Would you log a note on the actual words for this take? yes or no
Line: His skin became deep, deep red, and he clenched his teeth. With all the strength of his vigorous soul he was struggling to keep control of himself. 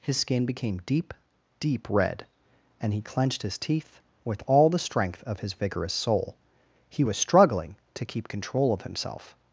no